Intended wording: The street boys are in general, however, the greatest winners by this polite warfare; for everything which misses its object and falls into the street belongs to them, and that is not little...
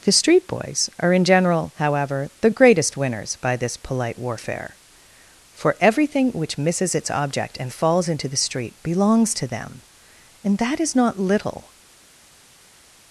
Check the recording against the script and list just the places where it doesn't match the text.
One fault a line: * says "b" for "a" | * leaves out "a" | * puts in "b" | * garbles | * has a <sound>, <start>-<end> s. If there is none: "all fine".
all fine